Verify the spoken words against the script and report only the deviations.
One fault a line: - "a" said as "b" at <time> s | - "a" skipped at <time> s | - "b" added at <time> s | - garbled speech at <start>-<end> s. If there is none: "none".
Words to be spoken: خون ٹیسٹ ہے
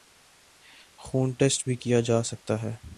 - "بھی کیا جاسکتا" added at 1.6 s